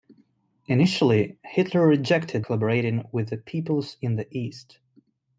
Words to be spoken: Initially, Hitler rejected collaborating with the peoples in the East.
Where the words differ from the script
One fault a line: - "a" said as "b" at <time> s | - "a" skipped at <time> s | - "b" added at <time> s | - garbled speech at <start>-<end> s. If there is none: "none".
none